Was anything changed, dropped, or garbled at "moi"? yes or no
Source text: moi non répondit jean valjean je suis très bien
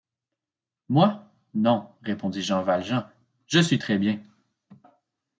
no